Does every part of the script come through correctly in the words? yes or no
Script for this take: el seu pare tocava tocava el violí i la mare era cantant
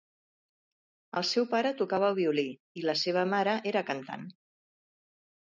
no